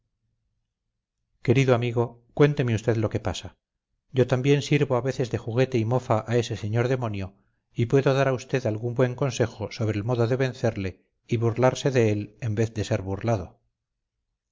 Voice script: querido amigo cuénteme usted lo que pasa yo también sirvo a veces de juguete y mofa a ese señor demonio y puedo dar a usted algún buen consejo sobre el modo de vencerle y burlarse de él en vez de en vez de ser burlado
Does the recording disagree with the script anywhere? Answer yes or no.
yes